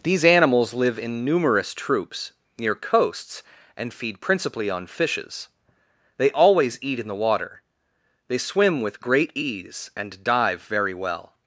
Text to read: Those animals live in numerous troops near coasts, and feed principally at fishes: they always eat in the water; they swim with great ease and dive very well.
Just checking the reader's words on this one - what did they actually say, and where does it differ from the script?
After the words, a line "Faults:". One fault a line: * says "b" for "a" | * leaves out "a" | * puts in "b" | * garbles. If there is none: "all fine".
These animals live in numerous troops near coasts, and feed principally on fishes: they always eat in the water; they swim with great ease and dive very well.
Faults:
* says "These" for "Those"
* says "on" for "at"